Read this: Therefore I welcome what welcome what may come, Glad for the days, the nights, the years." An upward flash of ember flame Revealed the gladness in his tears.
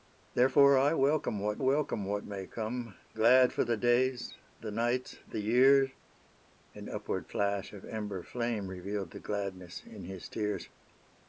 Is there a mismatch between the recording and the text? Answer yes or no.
no